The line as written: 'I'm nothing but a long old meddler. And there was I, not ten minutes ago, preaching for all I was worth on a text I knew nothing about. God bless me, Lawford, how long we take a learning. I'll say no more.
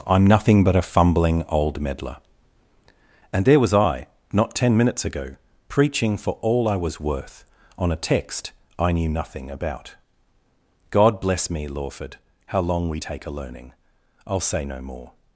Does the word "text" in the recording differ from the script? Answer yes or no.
no